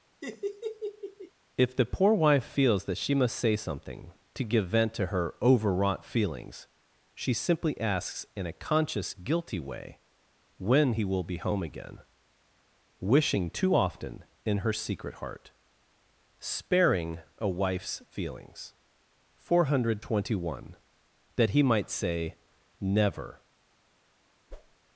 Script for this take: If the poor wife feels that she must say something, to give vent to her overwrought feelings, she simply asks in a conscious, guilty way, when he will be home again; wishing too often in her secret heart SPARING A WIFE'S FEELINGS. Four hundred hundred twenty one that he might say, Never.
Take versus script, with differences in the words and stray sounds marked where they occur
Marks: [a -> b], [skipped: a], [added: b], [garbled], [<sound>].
[laugh] If the poor wife feels that she must say something, to give vent to her overwrought feelings, she simply asks in a conscious, guilty way, when he will be home again; wishing too often in her secret heart SPARING A WIFE'S FEELINGS. Four hundred [skipped: hundred] twenty one that he might say, Never. [whoosh]